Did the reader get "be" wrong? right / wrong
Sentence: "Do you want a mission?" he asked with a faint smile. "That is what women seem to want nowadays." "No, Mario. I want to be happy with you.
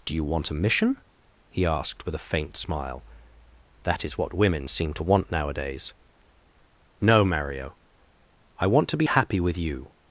wrong